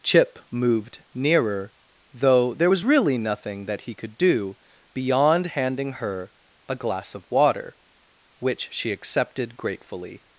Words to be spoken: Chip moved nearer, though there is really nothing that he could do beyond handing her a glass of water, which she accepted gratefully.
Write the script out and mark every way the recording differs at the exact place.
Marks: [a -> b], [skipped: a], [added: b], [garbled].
Chip moved nearer, though there [is -> was] really nothing that he could do beyond handing her a glass of water, which she accepted gratefully.